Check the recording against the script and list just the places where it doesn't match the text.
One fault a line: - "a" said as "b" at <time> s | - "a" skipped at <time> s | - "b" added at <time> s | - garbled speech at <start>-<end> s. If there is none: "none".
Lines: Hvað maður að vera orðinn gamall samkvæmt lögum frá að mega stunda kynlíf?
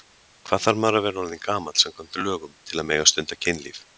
- "þarf" added at 0.6 s
- "frá" said as "til" at 2.7 s